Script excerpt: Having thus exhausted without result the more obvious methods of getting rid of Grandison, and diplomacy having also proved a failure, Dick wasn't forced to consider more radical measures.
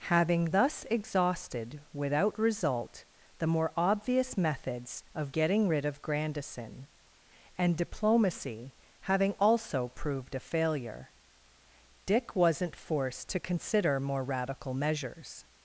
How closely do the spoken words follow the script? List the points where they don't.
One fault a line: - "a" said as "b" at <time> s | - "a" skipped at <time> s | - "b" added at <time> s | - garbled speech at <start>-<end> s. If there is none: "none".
none